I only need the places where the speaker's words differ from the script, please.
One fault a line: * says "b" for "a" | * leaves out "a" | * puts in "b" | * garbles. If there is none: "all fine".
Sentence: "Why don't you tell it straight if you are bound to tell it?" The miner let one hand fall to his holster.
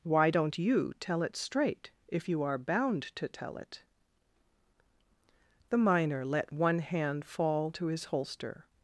all fine